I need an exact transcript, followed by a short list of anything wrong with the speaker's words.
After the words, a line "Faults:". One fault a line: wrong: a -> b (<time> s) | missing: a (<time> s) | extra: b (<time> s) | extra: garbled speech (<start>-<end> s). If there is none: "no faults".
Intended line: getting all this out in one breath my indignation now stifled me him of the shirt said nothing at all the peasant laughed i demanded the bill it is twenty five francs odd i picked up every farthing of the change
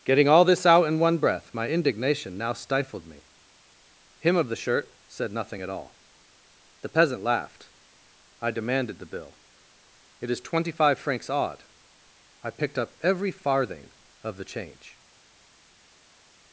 getting all this out in one breath my indignation now stifled me him of the shirt said nothing at all the peasant laughed i demanded the bill it is twenty five francs odd i picked up every farthing of the change
Faults:
no faults